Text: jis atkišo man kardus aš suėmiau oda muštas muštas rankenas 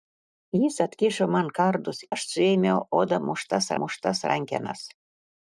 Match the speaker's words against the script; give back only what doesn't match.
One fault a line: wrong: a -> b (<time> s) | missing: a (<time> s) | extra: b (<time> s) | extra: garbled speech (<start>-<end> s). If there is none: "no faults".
no faults